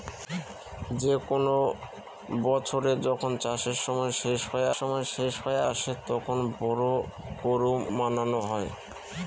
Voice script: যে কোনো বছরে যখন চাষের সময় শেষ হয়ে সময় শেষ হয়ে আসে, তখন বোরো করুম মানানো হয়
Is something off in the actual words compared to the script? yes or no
no